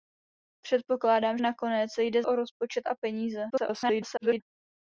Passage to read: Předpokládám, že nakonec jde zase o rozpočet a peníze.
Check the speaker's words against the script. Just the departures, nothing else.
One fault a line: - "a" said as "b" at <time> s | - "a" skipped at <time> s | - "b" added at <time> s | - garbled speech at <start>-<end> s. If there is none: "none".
- "že" skipped at 1.4 s
- "zase" skipped at 2.2 s
- garbled speech at 3.5-4.4 s